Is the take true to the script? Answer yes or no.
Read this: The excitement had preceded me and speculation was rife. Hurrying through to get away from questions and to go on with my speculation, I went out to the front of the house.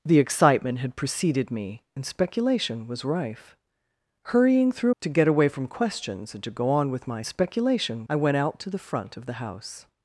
yes